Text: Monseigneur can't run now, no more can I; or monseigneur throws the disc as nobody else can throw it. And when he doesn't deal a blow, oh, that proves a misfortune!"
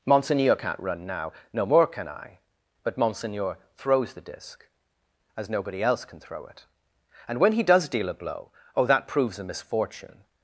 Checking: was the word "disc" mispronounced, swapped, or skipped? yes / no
no